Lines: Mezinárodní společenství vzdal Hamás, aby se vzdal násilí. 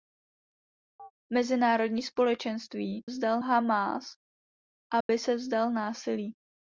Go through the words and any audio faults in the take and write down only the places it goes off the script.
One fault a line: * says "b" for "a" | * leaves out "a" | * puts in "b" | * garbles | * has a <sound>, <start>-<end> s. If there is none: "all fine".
* has a chirp, 1.0-1.1 s
* has a dropout, 5.0-5.1 s